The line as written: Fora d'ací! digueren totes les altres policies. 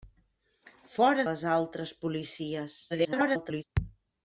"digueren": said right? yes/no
no